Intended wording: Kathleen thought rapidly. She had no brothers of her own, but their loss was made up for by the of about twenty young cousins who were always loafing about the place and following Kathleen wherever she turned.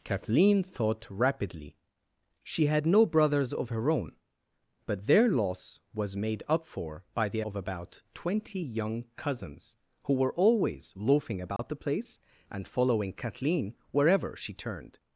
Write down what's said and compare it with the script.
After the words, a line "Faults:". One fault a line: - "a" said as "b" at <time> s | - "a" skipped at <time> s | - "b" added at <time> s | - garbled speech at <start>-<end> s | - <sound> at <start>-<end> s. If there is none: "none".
Kathleen thought rapidly. She had no brothers of her own, but their loss was made up for by the of about twenty young cousins who were always loafing about the place and following Kathleen wherever she turned.
Faults:
- dropout at 11.6-11.6 s